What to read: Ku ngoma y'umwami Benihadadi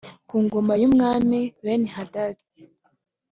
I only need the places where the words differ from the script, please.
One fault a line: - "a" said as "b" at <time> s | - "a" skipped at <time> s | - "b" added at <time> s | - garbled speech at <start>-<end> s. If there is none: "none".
none